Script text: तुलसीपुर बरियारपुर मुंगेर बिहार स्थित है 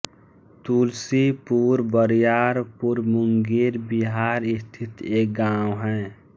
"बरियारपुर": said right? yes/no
yes